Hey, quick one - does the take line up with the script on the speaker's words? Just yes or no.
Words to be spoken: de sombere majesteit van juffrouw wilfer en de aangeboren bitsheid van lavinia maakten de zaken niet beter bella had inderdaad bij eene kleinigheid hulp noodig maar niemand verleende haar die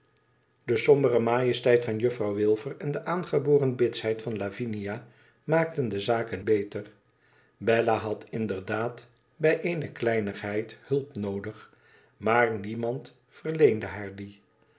no